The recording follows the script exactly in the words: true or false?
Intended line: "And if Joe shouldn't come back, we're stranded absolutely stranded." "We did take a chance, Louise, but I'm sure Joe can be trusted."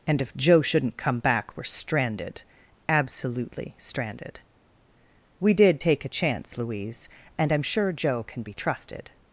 false